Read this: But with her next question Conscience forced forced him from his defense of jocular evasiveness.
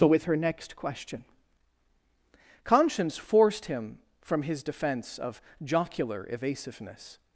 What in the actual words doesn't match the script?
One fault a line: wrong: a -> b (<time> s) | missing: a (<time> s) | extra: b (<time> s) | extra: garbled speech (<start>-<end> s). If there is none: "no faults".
missing: forced (3.6 s)